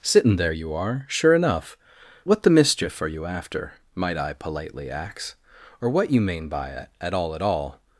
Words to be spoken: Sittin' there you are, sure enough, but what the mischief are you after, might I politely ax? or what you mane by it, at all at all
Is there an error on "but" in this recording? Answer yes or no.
yes